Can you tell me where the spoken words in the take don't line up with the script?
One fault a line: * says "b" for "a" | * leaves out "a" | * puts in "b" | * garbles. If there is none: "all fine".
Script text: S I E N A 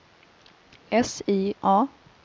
* leaves out "E N"